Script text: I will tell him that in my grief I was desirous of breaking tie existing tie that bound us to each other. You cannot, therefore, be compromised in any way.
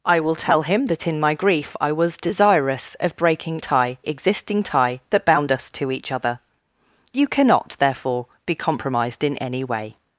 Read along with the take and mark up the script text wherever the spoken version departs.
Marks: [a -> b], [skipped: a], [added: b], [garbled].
I will tell him that in my grief I was desirous of breaking tie existing tie that bound us to each other. You cannot, therefore, be compromised in any way.